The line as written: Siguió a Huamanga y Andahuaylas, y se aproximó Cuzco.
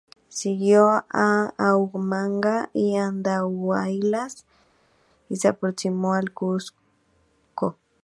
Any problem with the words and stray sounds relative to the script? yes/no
yes